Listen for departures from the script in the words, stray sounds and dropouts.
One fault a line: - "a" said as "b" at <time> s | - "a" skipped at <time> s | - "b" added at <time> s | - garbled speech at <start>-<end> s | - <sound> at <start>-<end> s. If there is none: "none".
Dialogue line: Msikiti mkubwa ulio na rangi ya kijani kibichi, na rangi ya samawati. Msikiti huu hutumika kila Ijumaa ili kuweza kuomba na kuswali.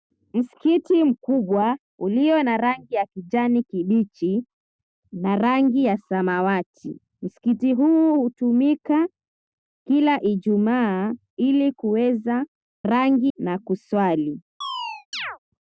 - "kuomba" said as "rangi" at 12.8 s
- chirp at 14.6-15.4 s